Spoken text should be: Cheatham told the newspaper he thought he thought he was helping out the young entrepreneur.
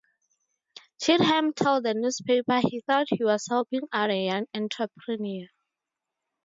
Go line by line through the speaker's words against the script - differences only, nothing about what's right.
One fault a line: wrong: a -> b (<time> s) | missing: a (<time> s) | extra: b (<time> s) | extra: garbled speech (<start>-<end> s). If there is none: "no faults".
missing: thought he (3.2 s)
wrong: the -> a (4.1 s)